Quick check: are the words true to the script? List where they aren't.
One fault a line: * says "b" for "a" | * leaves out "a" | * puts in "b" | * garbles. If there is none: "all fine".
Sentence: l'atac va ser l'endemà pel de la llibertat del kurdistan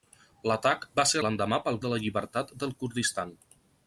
all fine